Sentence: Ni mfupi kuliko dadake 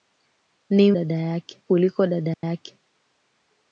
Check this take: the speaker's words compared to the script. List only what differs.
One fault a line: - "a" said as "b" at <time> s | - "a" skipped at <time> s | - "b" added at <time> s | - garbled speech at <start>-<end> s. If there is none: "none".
- "mfupi" said as "dadake" at 0.9 s